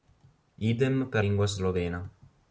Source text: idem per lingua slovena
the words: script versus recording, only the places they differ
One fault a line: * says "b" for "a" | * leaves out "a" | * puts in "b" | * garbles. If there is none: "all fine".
all fine